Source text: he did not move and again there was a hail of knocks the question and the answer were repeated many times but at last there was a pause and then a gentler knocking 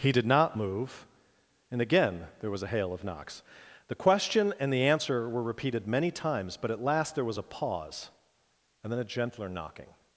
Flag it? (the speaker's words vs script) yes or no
no